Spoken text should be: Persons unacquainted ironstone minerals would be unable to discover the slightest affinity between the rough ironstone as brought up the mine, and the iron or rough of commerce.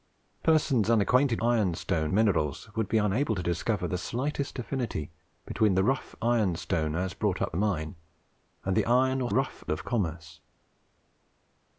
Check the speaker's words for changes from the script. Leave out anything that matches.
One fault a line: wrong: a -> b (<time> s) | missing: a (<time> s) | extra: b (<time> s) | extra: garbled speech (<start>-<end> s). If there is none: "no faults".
no faults